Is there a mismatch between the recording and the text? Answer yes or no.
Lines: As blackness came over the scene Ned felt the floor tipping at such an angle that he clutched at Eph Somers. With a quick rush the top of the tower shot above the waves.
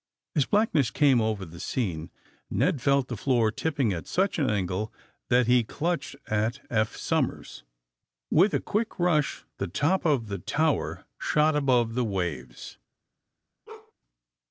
no